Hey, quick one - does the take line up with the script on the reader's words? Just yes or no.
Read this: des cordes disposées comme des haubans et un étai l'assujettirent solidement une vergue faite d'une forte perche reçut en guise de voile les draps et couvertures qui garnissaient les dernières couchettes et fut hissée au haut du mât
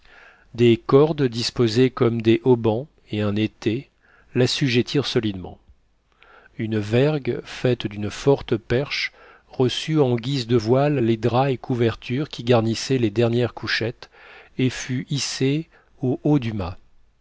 yes